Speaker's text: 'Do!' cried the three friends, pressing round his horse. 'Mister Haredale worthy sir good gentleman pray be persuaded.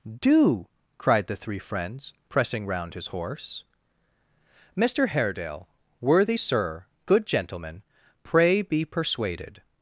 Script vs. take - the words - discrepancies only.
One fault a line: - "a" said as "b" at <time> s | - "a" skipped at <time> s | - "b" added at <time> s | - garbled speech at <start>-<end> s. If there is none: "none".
none